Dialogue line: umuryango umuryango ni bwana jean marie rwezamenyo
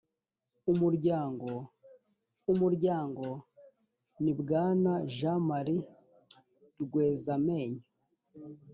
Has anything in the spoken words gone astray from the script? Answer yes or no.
no